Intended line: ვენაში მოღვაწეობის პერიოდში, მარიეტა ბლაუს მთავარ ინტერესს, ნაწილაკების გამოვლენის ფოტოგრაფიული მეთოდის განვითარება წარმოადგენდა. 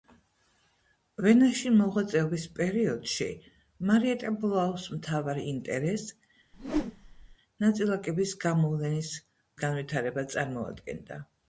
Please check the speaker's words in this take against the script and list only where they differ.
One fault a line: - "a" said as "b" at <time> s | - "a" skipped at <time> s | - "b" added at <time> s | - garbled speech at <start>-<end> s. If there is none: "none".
- "ფოტოგრაფიული მეთოდის" skipped at 9.1 s